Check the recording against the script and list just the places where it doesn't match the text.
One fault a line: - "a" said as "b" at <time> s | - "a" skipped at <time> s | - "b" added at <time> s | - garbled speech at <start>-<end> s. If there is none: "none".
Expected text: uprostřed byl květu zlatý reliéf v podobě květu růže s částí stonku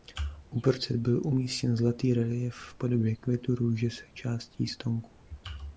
- "květu" said as "umístěn" at 1.2 s